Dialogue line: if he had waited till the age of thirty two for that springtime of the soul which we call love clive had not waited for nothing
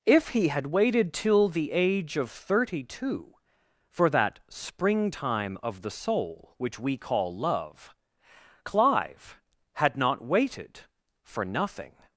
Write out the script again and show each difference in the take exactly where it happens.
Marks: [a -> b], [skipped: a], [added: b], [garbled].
if he had waited till the age of thirty two for that springtime of the soul which we call love clive had not waited for nothing